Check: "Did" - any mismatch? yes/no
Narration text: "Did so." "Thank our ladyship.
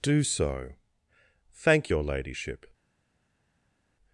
yes